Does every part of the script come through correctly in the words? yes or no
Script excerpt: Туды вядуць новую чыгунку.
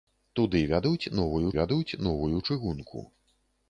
no